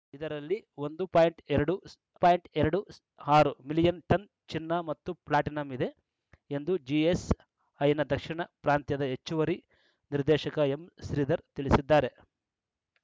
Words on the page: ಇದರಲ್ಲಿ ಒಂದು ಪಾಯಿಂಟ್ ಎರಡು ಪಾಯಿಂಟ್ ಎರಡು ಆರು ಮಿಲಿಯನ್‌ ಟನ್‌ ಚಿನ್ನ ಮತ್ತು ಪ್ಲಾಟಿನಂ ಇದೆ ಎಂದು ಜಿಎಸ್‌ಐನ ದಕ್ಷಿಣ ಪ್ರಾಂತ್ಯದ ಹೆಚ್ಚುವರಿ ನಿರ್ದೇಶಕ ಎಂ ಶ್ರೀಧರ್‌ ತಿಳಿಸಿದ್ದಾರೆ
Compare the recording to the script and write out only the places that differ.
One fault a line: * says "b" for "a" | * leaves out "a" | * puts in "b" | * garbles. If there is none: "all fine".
all fine